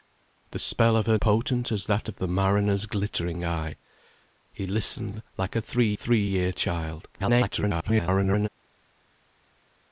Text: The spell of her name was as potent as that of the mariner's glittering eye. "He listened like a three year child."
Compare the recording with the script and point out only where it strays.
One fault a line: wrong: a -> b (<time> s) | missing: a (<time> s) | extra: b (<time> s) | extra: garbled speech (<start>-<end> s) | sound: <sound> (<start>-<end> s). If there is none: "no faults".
missing: name was as (1.2 s)
extra: three (5.9 s)
extra: garbled speech (7.1-8.5 s)